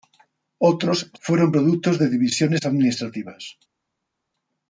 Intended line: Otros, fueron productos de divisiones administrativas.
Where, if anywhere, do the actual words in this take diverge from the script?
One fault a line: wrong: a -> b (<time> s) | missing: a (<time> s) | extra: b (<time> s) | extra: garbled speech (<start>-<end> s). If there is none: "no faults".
no faults